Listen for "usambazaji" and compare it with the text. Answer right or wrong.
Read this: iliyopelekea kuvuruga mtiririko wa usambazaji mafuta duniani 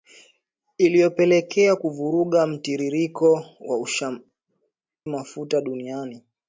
wrong